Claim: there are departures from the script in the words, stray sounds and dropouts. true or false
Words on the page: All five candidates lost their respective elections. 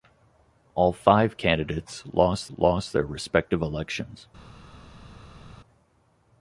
true